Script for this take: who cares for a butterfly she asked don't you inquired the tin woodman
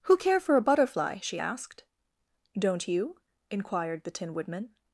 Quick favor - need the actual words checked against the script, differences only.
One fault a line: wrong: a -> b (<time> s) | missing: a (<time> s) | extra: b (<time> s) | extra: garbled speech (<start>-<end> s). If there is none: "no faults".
wrong: cares -> care (0.2 s)